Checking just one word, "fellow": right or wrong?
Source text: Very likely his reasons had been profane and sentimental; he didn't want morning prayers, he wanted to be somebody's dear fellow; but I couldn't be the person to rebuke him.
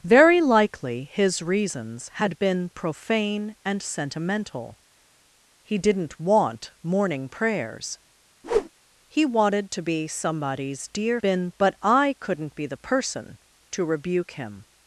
wrong